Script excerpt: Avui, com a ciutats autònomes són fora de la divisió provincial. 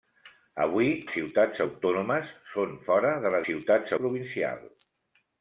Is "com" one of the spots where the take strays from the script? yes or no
yes